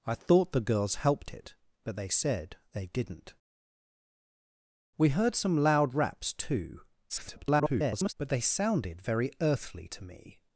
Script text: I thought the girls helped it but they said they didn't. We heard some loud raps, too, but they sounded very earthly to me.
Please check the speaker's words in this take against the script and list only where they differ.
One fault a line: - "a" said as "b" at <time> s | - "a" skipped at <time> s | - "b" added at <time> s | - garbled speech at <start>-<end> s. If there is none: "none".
- garbled speech at 7.1-8.1 s